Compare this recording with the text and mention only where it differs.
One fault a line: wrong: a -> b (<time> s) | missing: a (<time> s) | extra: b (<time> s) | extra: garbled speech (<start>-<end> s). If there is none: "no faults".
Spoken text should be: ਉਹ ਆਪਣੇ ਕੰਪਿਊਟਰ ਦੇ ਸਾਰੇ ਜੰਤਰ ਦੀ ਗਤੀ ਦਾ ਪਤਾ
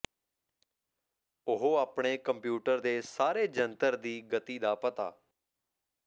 no faults